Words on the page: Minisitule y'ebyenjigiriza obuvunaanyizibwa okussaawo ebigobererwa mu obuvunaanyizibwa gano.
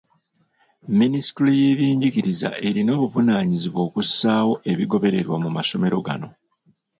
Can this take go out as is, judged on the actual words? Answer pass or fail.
fail